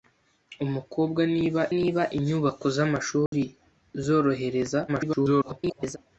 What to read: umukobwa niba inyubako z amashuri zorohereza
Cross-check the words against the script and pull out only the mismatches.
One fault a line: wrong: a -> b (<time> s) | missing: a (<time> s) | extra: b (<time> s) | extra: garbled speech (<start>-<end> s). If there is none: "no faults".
extra: niba (1.8 s)
extra: garbled speech (4.9-6.0 s)